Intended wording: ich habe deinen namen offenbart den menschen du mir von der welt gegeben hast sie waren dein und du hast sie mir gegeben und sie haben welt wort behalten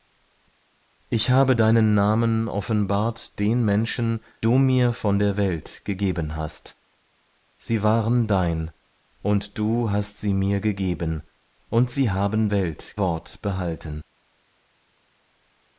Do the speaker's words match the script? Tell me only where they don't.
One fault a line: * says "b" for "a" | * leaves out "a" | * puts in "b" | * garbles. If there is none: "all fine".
all fine